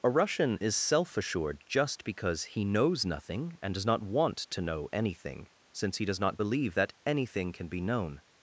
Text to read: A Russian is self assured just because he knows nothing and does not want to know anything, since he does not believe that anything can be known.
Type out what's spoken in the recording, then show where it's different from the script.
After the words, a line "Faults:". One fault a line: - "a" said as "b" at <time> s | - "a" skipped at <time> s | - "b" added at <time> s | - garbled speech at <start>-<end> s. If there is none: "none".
A Russian is self assured just because he knows nothing and does not want to know anything, since he does not believe that anything can be known.
Faults:
none